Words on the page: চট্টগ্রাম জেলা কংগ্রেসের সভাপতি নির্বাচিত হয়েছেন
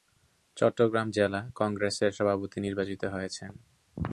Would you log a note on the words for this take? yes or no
no